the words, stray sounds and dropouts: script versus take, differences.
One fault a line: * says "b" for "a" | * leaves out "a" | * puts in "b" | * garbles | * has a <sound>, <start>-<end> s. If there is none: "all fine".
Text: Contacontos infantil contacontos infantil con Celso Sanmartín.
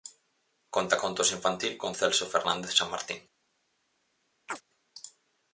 * leaves out "contacontos infantil"
* puts in "Fernández"
* has a chirp, 4.5-4.6 s